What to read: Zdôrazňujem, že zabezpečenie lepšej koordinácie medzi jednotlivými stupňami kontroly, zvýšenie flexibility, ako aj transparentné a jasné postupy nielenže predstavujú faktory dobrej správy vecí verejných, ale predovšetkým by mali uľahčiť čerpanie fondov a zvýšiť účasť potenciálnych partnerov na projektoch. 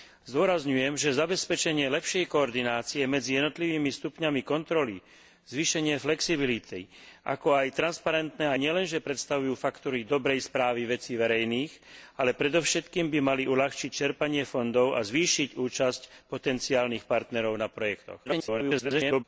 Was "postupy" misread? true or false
true